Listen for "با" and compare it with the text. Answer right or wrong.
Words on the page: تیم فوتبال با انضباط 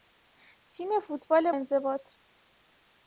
wrong